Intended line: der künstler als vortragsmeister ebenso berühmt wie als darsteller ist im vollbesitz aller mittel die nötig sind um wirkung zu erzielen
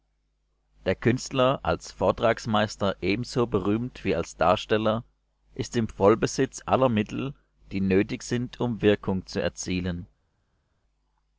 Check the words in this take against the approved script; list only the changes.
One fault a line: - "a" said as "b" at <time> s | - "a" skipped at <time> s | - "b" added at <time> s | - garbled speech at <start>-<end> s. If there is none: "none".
none